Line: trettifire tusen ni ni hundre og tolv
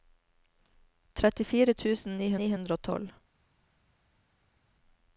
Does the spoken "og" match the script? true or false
true